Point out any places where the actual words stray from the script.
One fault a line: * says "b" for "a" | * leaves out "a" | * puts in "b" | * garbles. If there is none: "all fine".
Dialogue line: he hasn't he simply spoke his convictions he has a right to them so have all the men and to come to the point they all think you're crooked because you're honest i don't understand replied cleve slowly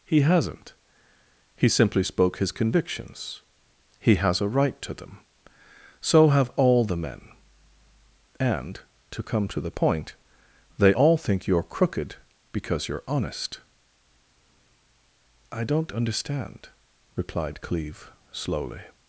all fine